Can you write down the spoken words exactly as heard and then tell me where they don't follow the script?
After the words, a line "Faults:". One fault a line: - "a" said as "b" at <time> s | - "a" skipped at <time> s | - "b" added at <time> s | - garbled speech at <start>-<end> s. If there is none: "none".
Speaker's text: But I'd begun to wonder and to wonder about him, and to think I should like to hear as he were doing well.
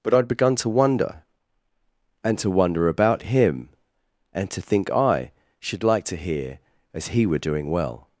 But I'd begun to wonder and to wonder about him, and to think I should like to hear as he were doing well.
Faults:
none